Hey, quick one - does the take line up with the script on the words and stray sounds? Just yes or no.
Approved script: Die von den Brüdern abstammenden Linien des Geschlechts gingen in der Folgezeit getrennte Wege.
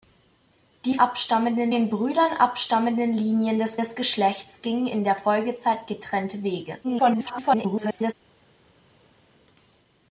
no